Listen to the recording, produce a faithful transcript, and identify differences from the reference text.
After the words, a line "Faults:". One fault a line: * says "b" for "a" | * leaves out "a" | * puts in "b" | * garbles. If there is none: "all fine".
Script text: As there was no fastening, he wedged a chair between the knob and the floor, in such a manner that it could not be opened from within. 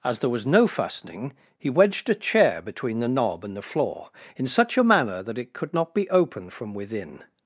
As there was no fastening, he wedged a chair between the knob and the floor, in such a manner that it could not be opened from within.
Faults:
all fine